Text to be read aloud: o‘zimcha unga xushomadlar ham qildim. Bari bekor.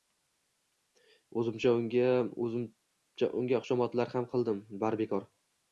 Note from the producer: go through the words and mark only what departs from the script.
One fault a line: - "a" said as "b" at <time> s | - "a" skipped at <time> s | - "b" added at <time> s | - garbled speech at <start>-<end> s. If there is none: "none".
none